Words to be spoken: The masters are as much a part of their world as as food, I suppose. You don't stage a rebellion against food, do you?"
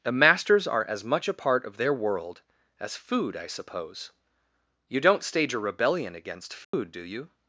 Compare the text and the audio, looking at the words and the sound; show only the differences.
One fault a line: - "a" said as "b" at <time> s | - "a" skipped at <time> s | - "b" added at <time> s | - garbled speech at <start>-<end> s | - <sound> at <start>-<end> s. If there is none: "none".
- "as" skipped at 3.0 s
- dropout at 6.6-6.7 s